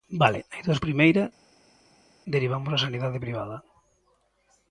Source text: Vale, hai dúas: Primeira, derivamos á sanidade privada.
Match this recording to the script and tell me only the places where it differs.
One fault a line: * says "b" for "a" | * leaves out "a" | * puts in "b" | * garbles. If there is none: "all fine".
all fine